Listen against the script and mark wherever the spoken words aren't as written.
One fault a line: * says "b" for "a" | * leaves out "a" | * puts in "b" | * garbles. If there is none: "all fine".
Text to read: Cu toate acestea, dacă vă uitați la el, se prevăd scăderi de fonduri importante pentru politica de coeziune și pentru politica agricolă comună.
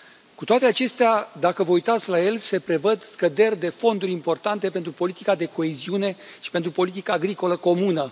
all fine